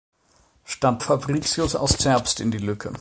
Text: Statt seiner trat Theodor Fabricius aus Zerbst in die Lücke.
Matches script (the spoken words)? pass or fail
fail